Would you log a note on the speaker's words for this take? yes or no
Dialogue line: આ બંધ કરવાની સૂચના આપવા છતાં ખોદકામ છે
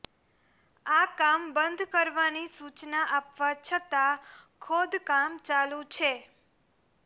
yes